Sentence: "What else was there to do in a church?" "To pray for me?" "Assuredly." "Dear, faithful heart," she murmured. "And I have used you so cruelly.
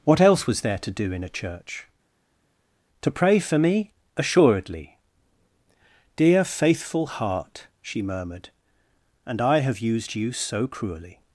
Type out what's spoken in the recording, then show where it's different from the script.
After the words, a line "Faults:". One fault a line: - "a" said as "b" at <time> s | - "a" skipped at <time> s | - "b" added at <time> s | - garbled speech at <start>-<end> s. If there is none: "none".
"What else was there to do in a church?" "To pray for me?" "Assuredly." "Dear, faithful heart," she murmured. "And I have used you so cruelly.
Faults:
none